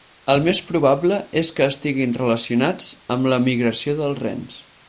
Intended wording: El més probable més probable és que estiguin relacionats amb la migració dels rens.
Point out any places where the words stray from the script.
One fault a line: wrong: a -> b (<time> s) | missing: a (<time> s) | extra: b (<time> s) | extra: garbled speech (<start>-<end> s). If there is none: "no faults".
missing: més probable (1.2 s)